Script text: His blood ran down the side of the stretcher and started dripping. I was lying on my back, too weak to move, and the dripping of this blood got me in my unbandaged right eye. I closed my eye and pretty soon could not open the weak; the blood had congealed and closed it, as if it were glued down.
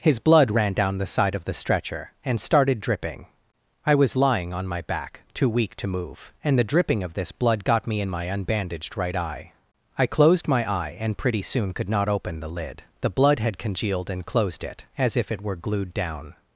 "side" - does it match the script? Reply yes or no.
yes